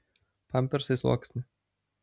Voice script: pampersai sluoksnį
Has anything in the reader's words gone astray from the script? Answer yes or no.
no